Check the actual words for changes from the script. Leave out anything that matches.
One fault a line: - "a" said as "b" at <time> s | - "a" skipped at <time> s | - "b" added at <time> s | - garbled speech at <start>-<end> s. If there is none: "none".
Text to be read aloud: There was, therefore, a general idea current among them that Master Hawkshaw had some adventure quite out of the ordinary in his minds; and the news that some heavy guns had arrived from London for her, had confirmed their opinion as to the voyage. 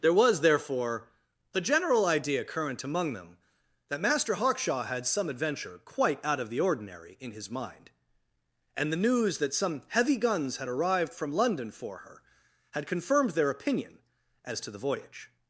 - "minds" said as "mind" at 7.5 s